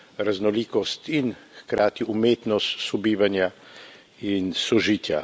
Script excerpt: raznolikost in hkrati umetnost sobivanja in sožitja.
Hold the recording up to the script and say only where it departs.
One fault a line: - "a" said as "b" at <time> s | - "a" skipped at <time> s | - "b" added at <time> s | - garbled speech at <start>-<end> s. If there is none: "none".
none